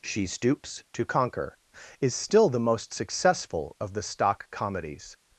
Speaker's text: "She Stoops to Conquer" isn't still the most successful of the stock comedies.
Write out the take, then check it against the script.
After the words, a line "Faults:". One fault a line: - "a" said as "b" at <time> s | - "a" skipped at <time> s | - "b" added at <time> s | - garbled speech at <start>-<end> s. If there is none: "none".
"She Stoops to Conquer" is still the most successful of the stock comedies.
Faults:
- "isn't" said as "is" at 2.0 s